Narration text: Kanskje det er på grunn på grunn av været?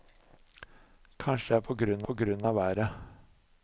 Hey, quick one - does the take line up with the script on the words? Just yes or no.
yes